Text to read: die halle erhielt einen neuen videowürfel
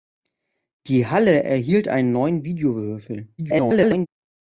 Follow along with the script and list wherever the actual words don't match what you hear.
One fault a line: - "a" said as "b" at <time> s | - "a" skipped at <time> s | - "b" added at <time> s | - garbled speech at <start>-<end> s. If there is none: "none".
- garbled speech at 3.4-4.1 s